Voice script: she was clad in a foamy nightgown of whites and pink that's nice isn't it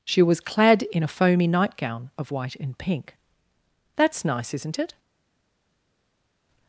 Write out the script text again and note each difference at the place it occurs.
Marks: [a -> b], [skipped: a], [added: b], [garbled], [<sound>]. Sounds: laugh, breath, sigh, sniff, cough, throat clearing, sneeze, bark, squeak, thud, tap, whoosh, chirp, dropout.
she was clad in a foamy nightgown of [whites -> white] and pink that's nice isn't it